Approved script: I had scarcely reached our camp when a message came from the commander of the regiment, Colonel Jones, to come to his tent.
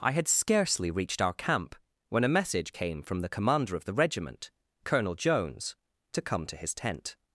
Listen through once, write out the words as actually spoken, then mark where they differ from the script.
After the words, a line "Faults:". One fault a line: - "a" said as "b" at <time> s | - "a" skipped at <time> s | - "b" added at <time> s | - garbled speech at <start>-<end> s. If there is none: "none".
I had scarcely reached our camp when a message came from the commander of the regiment, Colonel Jones, to come to his tent.
Faults:
none